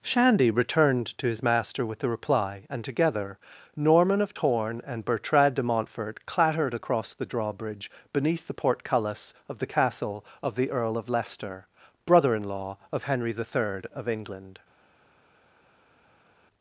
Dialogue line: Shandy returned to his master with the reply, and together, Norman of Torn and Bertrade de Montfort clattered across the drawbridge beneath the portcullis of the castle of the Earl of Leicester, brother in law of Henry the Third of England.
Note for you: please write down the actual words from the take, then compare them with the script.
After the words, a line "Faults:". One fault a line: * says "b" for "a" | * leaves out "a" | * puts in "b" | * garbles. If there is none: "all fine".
Shandy returned to his master with the reply, and together, Norman of Torn and Bertrade de Montfort clattered across the drawbridge beneath the portcullis of the castle of the Earl of Leicester, brother in law of Henry the Third of England.
Faults:
all fine